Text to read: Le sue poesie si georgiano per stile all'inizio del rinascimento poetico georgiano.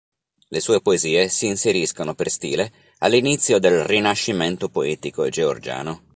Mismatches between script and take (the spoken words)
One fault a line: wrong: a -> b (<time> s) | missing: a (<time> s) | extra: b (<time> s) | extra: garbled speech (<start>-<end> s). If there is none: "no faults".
wrong: georgiano -> inseriscono (1.4 s)